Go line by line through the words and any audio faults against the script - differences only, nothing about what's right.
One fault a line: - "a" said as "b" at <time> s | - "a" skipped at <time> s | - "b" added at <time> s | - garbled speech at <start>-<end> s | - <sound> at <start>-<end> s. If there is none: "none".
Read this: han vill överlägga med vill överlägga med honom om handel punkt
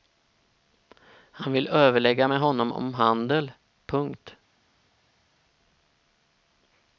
- "vill överlägga med" skipped at 2.4 s